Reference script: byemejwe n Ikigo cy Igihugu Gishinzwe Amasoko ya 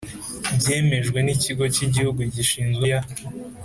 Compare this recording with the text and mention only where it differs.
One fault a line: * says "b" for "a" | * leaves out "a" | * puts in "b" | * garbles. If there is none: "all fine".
* leaves out "Amasoko"